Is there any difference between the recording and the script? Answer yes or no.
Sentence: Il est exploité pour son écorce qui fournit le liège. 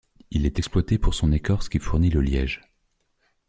no